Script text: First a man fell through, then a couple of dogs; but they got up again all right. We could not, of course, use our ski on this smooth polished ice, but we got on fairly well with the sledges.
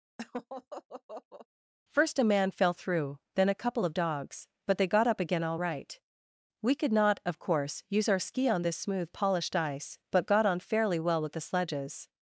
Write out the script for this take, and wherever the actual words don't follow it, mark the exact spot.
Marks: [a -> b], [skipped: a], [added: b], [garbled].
First a man fell through, then a couple of dogs; but they got up again all right. We could not, of course, use our ski on this smooth polished ice, but [skipped: we] got on fairly well with the sledges.